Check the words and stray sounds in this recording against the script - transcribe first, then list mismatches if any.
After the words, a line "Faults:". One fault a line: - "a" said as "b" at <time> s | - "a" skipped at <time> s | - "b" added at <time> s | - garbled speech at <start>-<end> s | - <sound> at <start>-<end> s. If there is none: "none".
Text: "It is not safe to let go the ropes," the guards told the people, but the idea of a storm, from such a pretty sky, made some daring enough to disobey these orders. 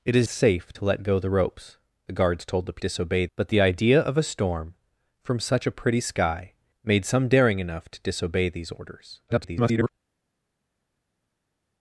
"It is safe to let go the ropes," the guards told the disobey, but the idea of a storm, from such a pretty sky, made some daring enough to disobey these orders. [garbled]
Faults:
- "not" skipped at 0.3 s
- "people" said as "disobey" at 2.8 s
- garbled speech at 9.3-9.9 s